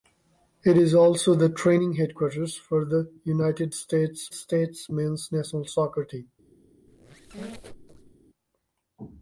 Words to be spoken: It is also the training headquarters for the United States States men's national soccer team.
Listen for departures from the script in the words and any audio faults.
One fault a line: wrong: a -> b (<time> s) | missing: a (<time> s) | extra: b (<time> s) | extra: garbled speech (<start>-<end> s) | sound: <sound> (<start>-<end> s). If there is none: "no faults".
sound: squeak (6.9-8.2 s)